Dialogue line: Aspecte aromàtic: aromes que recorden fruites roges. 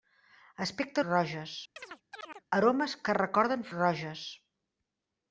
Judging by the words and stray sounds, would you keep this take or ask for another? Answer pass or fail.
fail